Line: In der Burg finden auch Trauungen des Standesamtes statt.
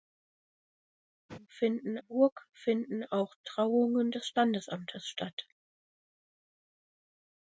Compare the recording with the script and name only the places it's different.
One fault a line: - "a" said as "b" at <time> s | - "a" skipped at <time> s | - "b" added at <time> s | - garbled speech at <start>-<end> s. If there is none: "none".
- "der" said as "finden" at 1.5 s